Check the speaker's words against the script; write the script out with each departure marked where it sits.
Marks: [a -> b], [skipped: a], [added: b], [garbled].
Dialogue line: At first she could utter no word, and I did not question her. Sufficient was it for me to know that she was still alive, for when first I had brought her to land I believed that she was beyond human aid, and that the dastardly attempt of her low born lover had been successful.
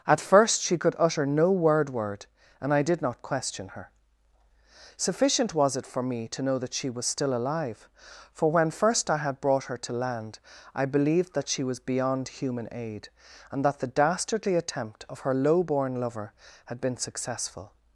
At first she could utter no word, [added: word] and I did not question her. Sufficient was it for me to know that she was still alive, for when first I had brought her to land I believed that she was beyond human aid, and that the dastardly attempt of her low born lover had been successful.